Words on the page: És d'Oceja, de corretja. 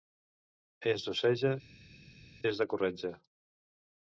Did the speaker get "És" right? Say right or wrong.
right